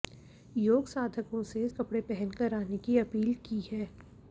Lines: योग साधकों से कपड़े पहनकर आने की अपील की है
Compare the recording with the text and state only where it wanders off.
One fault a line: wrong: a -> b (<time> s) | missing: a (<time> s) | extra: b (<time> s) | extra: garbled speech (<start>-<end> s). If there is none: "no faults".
no faults